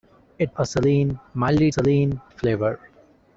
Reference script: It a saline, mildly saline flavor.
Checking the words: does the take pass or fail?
pass